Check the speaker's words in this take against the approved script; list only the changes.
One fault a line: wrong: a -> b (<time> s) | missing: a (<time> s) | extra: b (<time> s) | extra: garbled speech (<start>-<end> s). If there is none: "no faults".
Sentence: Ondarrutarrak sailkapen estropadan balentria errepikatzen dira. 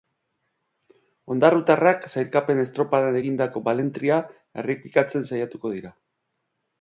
extra: egindako (3.2 s)
extra: saiatuko (5.3 s)